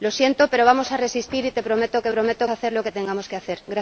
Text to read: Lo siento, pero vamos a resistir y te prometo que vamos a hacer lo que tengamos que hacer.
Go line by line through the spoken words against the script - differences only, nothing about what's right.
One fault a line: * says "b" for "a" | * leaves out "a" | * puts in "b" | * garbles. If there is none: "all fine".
* says "prometo" for "vamos"